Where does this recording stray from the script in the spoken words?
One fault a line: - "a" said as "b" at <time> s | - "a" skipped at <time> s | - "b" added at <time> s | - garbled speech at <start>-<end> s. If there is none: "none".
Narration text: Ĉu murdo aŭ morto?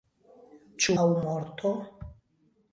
- "murdo" skipped at 0.9 s